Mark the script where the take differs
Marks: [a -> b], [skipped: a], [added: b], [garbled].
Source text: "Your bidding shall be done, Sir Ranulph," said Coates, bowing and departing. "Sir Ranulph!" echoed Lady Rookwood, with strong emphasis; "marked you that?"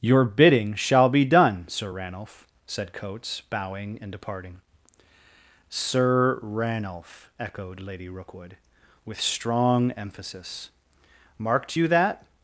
"Your bidding shall be done, Sir Ranulph," said Coates, bowing and departing. "Sir Ranulph!" echoed Lady Rookwood, with strong emphasis; "marked you that?"